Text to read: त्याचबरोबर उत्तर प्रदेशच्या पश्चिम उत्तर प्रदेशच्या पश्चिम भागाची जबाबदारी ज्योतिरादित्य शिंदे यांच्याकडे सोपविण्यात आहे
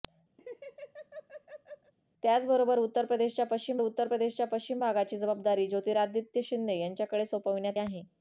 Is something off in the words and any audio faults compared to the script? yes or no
yes